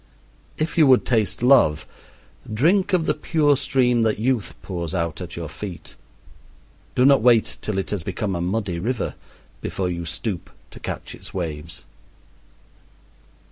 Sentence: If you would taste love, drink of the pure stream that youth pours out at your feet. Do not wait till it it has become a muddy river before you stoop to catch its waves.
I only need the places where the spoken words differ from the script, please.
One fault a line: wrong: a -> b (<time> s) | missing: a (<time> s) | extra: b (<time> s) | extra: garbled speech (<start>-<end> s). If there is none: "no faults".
missing: it (7.9 s)